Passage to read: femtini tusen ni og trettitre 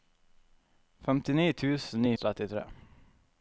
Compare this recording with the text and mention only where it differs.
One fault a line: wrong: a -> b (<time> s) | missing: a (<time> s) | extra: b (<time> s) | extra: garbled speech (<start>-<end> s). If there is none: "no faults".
no faults